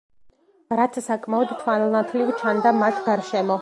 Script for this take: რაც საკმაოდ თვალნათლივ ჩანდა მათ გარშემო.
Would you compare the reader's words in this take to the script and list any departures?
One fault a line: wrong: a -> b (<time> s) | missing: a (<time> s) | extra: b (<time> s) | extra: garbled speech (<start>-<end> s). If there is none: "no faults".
no faults